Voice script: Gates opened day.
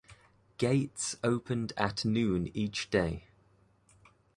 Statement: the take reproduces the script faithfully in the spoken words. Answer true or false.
false